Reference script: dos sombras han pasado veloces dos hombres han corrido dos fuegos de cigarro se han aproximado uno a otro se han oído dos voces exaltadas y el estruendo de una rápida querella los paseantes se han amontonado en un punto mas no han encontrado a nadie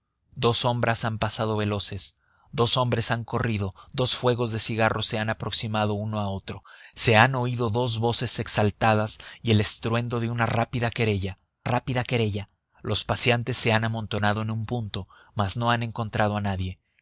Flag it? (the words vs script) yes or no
yes